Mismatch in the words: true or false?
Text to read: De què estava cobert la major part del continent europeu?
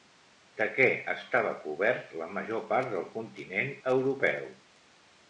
false